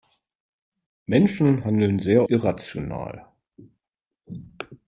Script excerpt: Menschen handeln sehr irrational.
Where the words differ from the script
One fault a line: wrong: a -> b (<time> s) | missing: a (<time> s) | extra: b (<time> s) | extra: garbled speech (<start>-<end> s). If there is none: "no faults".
no faults